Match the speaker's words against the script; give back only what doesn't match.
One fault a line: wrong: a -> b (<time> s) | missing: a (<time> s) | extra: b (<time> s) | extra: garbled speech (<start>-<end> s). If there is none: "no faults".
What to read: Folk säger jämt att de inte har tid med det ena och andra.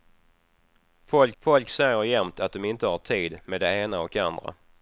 extra: folk (1.4 s)